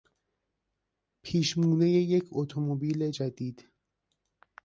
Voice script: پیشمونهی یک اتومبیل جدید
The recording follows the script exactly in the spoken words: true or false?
true